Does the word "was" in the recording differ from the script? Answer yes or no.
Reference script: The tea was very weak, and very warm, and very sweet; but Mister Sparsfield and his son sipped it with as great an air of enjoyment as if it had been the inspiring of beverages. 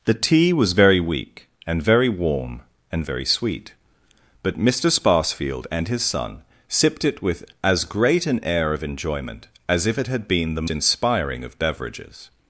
no